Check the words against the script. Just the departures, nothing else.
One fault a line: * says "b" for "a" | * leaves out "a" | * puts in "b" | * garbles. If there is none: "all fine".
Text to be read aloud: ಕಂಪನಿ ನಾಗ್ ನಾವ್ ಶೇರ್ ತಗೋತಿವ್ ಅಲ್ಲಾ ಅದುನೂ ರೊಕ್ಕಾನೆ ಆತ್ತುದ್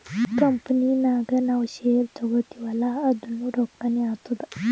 all fine